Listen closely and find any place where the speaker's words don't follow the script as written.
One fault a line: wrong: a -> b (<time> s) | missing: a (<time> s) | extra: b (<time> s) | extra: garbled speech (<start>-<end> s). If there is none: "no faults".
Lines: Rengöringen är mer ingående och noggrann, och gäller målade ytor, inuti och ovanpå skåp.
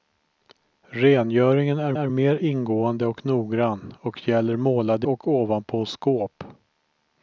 extra: är (1.9 s)
missing: ytor inuti (5.1 s)